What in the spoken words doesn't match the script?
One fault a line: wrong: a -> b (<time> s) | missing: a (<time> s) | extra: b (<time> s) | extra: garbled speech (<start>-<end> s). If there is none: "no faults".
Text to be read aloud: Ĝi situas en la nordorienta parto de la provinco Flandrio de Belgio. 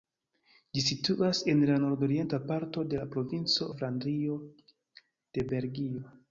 no faults